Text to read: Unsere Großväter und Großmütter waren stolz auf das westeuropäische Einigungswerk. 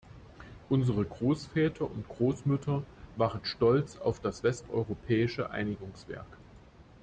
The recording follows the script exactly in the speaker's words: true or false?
true